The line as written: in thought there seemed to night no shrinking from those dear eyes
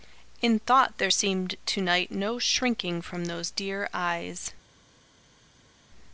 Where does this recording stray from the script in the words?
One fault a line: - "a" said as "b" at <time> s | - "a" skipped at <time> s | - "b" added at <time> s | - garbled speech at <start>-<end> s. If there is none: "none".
none